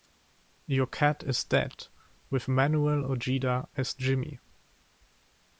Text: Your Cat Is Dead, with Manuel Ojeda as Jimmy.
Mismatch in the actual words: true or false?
false